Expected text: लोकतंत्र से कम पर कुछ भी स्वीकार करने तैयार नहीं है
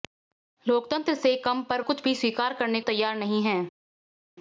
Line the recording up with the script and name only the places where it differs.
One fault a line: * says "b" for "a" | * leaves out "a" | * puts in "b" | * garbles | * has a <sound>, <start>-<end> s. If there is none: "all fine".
all fine